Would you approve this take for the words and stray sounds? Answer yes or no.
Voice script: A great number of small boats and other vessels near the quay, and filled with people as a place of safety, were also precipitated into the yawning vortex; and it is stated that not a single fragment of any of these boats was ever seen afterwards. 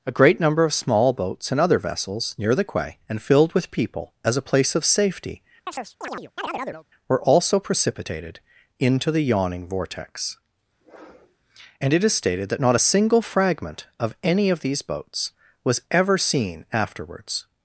no